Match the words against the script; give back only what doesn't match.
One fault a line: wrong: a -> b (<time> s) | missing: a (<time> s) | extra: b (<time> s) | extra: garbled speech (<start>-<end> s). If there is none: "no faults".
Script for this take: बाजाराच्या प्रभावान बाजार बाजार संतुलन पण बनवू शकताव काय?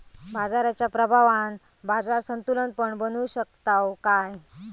missing: बाजार (2.2 s)